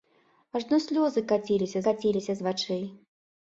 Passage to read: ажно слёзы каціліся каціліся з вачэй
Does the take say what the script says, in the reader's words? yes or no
yes